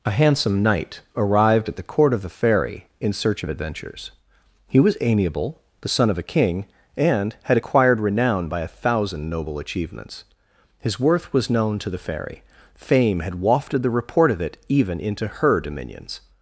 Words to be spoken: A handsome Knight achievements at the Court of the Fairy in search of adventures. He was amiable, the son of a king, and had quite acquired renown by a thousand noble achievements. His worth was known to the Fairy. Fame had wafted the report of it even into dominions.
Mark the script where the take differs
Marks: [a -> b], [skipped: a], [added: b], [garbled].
A handsome Knight [achievements -> arrived] at the Court of the Fairy in search of adventures. He was amiable, the son of a king, and had [skipped: quite] acquired renown by a thousand noble achievements. His worth was known to the Fairy. Fame had wafted the report of it even into [added: her] dominions.